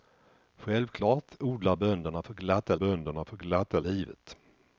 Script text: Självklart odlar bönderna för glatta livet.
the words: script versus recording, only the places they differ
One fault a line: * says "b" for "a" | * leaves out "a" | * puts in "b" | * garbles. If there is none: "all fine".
* puts in "bönderna för glatta"